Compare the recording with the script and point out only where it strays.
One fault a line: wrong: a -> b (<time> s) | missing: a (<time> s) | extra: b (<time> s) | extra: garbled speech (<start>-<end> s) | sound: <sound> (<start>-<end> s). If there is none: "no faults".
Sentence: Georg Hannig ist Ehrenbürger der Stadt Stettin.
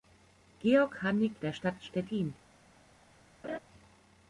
missing: ist Ehrenbürger (1.3 s)
sound: laugh (3.4-3.6 s)